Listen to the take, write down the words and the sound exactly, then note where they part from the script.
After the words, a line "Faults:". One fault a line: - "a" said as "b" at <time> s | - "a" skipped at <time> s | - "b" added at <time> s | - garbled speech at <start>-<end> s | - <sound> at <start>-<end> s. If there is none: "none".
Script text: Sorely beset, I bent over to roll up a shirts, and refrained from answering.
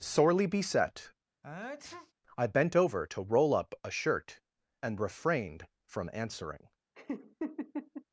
Sorely beset, I bent over to roll up a shirt, and refrained from answering.
Faults:
- sneeze at 1.4-2.1 s
- "shirts" said as "shirt" at 3.9 s
- laugh at 6.9-8.0 s